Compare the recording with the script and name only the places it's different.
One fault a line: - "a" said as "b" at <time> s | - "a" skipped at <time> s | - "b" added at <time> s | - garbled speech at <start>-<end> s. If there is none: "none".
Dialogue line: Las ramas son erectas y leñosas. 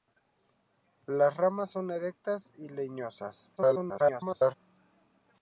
- garbled speech at 3.6-4.6 s